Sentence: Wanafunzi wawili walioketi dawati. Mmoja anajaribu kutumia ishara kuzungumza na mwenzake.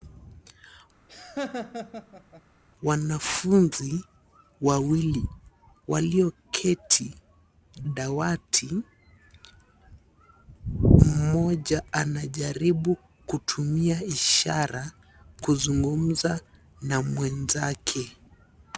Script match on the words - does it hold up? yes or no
yes